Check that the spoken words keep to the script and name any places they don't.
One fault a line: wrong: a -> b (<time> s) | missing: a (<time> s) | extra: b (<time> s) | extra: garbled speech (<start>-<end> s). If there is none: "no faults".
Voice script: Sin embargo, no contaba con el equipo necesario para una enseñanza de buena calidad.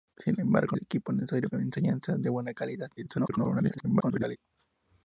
missing: no contaba con (0.8 s)
missing: para (1.5 s)
extra: garbled speech (3.0-4.4 s)